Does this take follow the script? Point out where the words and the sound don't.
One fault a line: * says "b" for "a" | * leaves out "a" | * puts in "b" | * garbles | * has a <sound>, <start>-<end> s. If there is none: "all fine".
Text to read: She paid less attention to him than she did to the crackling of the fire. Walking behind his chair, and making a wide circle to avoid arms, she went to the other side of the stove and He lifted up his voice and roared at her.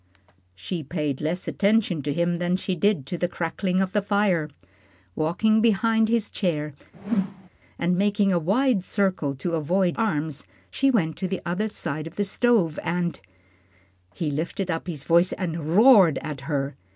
* has a whoosh, 6.9-7.5 s